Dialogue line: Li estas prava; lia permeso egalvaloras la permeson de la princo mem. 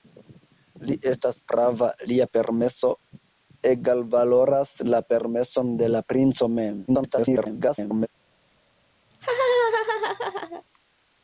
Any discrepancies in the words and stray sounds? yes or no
yes